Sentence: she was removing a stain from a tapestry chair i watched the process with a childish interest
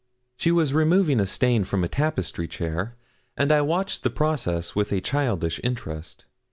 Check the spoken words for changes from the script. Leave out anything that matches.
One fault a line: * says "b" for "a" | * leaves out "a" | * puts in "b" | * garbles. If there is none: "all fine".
* puts in "and"